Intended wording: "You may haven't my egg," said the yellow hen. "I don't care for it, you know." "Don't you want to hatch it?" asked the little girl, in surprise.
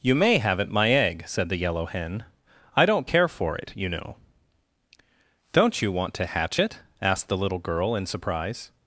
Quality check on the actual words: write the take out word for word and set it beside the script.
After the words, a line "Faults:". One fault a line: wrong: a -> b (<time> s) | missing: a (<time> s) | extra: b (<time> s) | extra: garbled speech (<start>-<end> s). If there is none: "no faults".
"You may haven't my egg," said the yellow hen. "I don't care for it, you know." "Don't you want to hatch it?" asked the little girl, in surprise.
Faults:
no faults